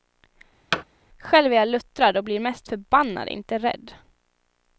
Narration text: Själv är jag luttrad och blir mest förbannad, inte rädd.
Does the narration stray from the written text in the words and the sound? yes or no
yes